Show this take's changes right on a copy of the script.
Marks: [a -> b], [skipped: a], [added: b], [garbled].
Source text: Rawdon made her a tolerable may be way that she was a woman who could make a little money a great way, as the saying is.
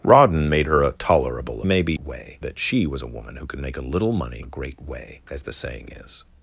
Rawdon made her a tolerable may be way that she was a woman who could make a little money a great way, as the saying is.